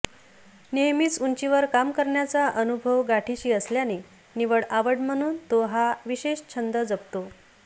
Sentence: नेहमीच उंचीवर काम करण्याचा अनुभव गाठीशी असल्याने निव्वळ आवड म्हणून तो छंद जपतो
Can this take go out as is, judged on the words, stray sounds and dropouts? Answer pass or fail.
fail